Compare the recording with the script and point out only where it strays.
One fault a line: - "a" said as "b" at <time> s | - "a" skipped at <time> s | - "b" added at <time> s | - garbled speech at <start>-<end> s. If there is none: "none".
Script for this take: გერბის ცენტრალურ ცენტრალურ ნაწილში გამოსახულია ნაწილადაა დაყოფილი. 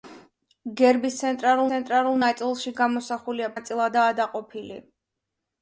none